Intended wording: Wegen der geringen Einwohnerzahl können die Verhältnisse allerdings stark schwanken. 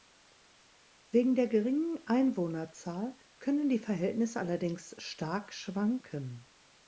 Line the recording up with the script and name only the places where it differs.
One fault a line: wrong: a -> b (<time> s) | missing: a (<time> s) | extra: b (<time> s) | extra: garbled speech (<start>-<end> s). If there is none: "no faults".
no faults